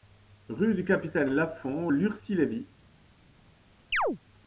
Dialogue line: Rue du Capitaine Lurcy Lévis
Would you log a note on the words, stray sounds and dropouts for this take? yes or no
yes